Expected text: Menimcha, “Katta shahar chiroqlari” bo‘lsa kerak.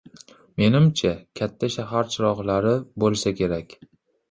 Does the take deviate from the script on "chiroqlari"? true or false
false